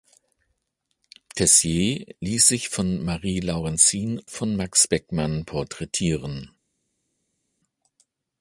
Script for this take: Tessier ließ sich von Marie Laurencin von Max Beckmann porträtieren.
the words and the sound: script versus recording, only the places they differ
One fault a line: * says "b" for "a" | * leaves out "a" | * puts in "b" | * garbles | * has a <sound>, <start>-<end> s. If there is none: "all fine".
all fine